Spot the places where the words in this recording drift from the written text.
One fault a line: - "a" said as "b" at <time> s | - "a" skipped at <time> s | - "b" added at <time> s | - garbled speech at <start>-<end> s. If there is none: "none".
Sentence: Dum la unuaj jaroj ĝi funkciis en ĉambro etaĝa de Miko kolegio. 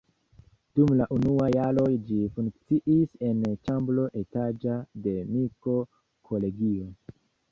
none